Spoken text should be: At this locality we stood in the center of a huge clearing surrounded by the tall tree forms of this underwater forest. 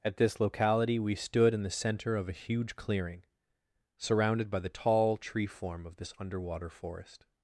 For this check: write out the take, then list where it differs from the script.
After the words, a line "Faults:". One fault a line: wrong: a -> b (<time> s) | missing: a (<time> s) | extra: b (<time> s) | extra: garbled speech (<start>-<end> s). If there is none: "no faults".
At this locality we stood in the center of a huge clearing surrounded by the tall tree form of this underwater forest.
Faults:
wrong: forms -> form (5.5 s)